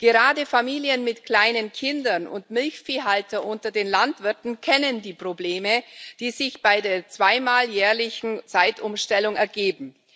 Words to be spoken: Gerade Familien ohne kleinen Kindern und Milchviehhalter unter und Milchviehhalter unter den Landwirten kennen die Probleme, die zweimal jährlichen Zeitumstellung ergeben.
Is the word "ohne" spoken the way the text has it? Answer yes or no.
no